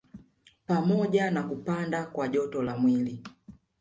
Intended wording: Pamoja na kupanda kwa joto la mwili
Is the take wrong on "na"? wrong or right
right